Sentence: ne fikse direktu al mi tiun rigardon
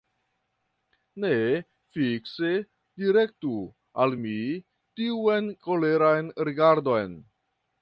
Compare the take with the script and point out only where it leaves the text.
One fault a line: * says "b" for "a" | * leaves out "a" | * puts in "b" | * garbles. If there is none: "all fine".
* puts in "koleran"